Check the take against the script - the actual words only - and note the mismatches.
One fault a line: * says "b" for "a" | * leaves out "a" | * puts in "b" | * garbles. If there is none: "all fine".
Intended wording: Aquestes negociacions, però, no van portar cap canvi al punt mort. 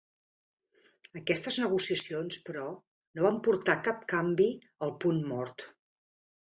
all fine